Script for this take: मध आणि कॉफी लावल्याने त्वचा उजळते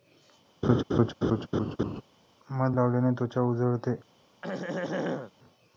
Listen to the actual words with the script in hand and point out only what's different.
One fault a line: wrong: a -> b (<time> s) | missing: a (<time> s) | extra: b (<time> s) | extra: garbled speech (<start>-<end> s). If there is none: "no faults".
missing: आणि कॉफी (2.8 s)